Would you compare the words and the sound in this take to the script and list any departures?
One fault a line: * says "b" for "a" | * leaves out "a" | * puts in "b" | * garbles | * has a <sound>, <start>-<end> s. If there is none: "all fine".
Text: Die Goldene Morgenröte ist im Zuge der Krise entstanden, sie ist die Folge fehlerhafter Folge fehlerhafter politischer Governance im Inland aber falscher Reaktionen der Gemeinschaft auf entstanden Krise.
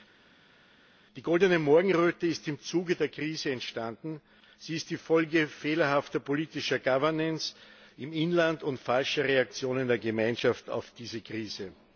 * leaves out "Folge fehlerhafter"
* says "und" for "aber"
* says "diese" for "entstanden"